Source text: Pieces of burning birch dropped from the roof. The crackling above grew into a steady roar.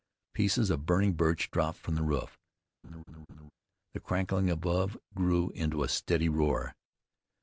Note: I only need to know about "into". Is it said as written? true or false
true